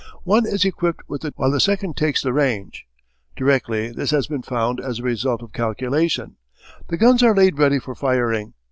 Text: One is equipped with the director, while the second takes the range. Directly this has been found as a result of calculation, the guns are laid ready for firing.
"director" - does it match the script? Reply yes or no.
no